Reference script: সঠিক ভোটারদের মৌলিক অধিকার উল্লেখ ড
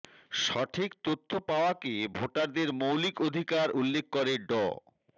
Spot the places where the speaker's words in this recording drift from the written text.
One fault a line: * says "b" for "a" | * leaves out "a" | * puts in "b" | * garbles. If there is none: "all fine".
* puts in "তথ্য পাওয়াকে"
* puts in "করে"